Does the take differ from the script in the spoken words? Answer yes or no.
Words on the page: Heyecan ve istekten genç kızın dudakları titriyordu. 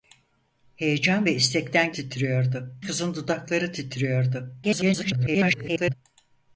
yes